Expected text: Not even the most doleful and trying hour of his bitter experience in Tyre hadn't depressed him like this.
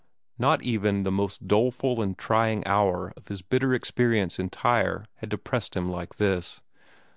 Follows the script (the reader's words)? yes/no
no